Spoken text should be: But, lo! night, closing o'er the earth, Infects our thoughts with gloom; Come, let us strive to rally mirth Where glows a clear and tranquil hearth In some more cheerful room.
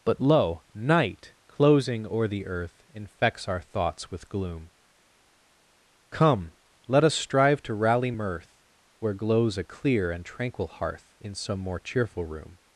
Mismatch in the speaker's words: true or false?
false